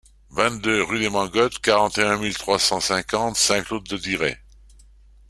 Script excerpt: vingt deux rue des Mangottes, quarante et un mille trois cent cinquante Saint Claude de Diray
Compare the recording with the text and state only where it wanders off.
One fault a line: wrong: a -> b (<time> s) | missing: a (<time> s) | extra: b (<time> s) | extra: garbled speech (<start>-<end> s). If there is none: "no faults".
no faults